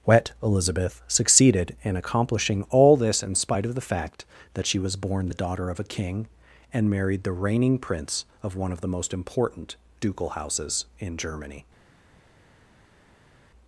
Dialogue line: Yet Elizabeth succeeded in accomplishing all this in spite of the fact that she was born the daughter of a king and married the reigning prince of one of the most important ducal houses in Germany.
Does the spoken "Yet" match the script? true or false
false